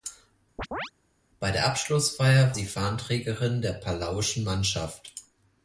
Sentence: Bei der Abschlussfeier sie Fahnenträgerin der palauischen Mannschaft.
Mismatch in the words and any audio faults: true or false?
true